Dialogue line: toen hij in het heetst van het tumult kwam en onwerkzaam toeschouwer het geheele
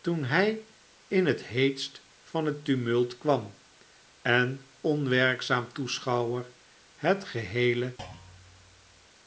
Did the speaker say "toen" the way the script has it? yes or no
yes